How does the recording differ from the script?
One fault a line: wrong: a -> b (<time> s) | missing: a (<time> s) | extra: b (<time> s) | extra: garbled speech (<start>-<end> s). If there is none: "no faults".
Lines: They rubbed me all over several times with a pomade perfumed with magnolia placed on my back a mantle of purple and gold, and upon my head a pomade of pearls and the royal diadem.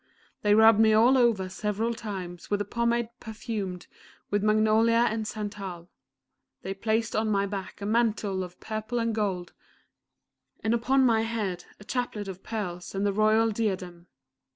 extra: and santal they (5.1 s)
wrong: pomade -> chaplet (11.8 s)